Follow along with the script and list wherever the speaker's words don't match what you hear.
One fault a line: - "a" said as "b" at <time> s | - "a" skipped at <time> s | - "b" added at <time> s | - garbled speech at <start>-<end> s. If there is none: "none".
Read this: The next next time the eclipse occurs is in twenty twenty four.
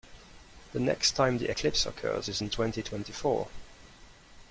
- "next" skipped at 1.1 s